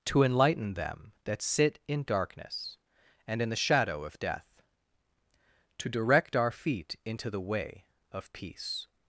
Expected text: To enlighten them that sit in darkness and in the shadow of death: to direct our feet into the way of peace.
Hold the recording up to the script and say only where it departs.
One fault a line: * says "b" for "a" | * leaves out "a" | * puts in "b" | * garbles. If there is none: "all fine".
all fine